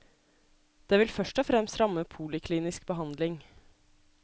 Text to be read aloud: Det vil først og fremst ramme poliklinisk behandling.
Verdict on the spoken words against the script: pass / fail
pass